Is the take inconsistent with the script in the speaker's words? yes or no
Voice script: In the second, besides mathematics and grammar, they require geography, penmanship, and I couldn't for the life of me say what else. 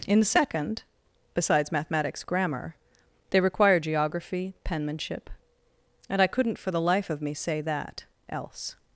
yes